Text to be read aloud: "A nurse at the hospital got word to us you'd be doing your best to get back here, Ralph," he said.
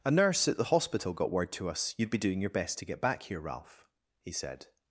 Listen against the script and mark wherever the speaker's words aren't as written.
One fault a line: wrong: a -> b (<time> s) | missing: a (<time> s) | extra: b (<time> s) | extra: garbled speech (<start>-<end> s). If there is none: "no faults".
no faults